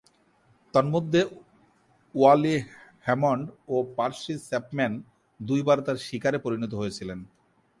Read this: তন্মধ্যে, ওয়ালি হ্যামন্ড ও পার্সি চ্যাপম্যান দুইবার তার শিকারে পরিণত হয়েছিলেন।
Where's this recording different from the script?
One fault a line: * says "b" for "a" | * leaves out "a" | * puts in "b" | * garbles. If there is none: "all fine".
all fine